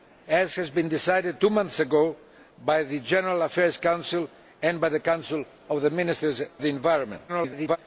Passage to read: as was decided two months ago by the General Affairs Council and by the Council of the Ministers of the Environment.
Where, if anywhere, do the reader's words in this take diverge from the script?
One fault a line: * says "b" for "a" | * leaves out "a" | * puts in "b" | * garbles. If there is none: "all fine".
* leaves out "of"
* garbles